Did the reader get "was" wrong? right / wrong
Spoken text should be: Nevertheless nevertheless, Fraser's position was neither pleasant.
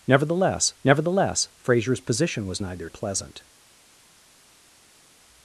right